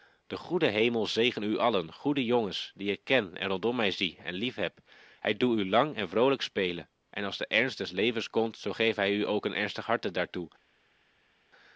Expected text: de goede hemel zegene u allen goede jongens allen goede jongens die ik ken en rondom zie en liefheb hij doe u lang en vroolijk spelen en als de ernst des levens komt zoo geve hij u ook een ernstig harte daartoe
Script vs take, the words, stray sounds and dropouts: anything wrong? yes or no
yes